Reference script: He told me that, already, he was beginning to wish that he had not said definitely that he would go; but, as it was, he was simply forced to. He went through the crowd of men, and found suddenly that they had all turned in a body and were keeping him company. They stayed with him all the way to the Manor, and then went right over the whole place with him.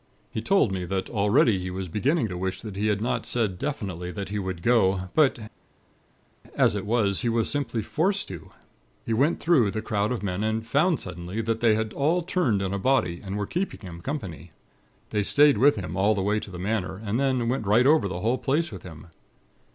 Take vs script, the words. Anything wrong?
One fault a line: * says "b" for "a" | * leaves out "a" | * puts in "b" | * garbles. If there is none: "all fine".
all fine